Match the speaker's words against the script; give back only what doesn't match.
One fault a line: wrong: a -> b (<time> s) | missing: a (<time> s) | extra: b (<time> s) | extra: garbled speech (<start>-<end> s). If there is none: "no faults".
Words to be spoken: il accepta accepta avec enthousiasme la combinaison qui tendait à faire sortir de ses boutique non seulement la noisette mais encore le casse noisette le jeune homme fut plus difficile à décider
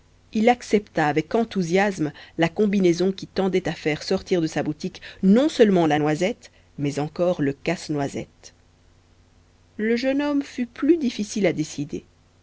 missing: accepta (1.1 s)
wrong: ses -> sa (4.5 s)